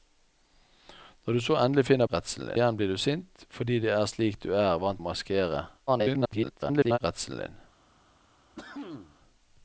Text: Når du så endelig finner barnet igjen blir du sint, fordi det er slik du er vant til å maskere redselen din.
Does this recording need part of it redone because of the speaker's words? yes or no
yes